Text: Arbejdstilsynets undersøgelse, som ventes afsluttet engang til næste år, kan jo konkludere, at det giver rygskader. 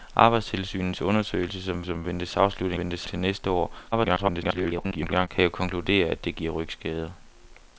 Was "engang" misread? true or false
true